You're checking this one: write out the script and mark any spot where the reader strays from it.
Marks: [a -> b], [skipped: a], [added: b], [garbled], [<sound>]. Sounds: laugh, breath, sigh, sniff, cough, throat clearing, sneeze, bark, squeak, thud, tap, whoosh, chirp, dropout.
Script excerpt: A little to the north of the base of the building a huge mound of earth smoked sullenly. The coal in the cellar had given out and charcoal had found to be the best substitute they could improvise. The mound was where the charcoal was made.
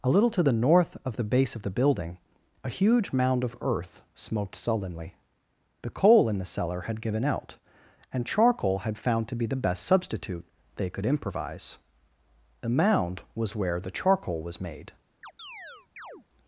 A little to the north of the base of the building a huge mound of earth smoked sullenly. The coal in the cellar had given out and charcoal had found to be the best substitute they could improvise. The mound was where the charcoal was made. [chirp]